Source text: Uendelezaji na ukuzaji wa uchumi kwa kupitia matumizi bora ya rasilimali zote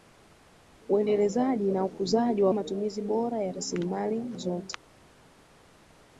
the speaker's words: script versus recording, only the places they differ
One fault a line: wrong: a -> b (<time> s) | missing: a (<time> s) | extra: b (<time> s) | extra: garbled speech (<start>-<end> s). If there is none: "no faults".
missing: uchumi kwa kupitia (2.5 s)